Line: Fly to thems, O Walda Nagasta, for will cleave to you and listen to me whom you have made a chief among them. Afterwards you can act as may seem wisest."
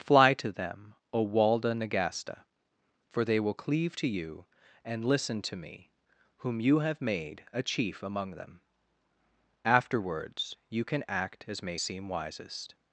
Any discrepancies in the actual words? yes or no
yes